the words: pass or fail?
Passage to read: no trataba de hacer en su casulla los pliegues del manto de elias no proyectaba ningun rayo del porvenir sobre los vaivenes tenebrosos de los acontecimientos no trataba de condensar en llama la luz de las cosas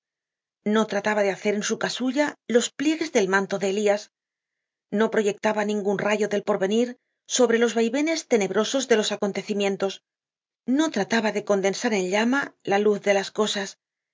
pass